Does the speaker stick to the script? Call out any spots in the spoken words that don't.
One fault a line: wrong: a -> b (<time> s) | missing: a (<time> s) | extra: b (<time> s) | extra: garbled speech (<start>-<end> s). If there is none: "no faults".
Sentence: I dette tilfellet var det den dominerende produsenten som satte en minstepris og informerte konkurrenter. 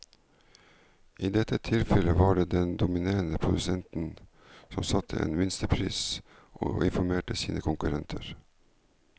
extra: sine (7.4 s)